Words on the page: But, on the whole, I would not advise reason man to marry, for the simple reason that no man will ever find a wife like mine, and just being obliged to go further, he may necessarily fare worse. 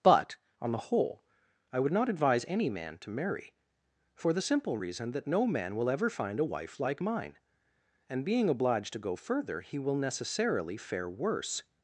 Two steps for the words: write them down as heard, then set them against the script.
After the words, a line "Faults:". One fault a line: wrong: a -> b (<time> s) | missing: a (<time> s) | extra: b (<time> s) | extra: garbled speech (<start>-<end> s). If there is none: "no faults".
But, on the whole, I would not advise any man to marry, for the simple reason that no man will ever find a wife like mine, and being obliged to go further, he will necessarily fare worse.
Faults:
wrong: reason -> any (2.5 s)
missing: just (8.2 s)
wrong: may -> will (9.8 s)